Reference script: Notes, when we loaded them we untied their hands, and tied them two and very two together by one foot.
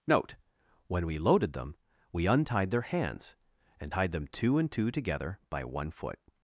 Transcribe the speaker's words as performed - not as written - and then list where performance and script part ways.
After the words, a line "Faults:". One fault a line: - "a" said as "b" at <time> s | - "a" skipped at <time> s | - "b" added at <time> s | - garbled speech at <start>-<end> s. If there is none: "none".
Note, when we loaded them we untied their hands, and tied them two and two together by one foot.
Faults:
- "Notes" said as "Note" at 0.1 s
- "very" skipped at 4.7 s